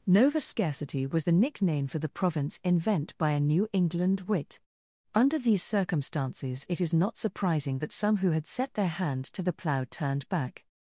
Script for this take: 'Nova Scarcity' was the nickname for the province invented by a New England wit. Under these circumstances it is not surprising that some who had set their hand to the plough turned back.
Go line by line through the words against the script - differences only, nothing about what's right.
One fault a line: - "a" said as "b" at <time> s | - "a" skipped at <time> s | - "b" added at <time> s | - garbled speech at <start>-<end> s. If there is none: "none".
- "invented" said as "invent" at 2.6 s